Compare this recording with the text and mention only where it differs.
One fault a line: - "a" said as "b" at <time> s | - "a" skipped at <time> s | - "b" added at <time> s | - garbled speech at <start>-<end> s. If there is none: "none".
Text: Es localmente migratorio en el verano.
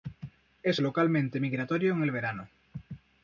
none